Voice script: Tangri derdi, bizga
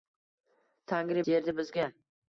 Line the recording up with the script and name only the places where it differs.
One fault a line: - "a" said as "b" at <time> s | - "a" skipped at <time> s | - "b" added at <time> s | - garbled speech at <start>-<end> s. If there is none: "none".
none